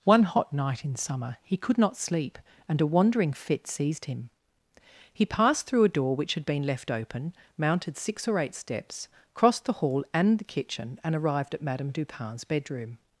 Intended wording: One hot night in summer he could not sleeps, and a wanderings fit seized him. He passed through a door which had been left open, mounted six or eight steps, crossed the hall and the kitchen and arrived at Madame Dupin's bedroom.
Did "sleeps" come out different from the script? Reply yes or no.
yes